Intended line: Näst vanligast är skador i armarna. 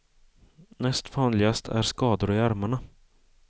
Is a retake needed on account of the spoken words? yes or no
no